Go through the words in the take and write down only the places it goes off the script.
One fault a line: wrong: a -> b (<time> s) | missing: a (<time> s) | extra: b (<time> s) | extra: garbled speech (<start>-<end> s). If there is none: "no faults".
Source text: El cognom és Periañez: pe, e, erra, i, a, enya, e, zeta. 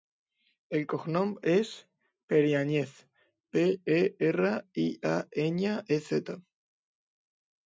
no faults